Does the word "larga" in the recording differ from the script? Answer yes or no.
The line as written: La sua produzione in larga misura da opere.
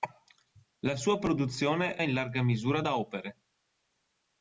no